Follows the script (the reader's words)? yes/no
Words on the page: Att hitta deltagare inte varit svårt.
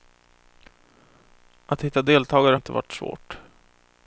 yes